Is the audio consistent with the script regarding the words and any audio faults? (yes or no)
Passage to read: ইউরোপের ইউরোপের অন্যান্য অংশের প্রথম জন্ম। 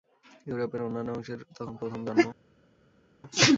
no